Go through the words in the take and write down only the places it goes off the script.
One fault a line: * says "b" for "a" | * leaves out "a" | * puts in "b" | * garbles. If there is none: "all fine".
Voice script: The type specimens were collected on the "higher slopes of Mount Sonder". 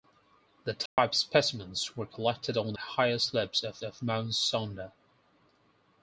* leaves out "the"
* puts in "of"